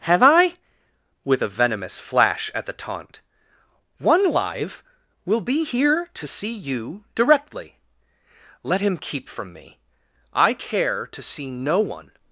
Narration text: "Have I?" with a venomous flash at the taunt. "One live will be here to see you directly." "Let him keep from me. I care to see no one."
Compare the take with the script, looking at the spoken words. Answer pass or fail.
pass